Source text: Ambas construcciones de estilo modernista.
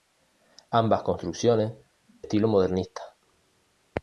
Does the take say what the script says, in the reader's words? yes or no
no